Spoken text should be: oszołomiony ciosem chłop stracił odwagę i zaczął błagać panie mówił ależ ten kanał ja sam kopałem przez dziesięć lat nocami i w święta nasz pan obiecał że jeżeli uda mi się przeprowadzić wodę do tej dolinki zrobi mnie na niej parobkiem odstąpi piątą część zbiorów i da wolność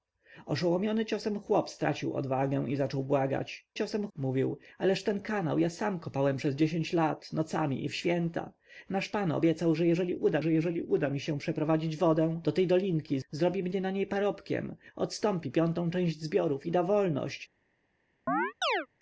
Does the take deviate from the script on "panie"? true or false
true